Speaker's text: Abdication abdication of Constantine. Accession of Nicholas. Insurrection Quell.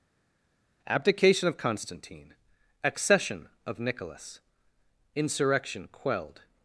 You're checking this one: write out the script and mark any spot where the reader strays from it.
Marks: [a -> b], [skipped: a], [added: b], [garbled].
Abdication [skipped: abdication] of Constantine. Accession of Nicholas. Insurrection [Quell. -> Quelled]